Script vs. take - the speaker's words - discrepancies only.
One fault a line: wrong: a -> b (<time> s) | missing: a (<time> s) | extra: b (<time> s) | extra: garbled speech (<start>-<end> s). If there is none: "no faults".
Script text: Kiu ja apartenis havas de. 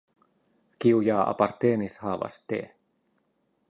no faults